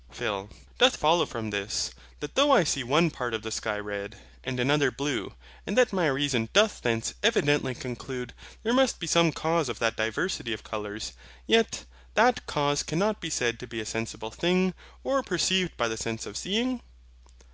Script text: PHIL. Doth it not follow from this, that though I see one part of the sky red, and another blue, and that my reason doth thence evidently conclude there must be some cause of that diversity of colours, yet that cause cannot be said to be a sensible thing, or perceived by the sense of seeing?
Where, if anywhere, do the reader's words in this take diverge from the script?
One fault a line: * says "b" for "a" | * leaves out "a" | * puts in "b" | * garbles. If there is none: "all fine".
* leaves out "it not"